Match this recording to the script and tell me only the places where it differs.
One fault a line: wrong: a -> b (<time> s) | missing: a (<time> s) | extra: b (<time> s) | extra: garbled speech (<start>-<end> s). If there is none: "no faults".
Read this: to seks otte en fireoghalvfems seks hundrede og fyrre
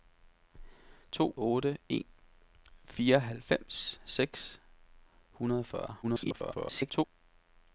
missing: seks (1.4 s)
extra: garbled speech (6.0-7.0 s)